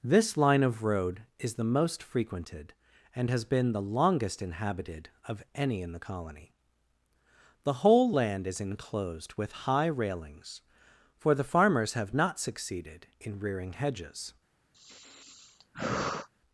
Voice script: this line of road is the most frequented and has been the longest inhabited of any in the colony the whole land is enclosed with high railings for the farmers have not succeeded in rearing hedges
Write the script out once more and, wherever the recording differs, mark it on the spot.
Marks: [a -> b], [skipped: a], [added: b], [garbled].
this line of road is the most frequented and has been the longest inhabited of any in the colony the whole land is enclosed with high railings for the farmers have not succeeded in rearing hedges